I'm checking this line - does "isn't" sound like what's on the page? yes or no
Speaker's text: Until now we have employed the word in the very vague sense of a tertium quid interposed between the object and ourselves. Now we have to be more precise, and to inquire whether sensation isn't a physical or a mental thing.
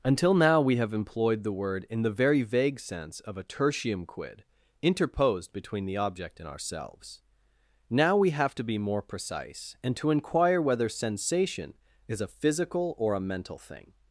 no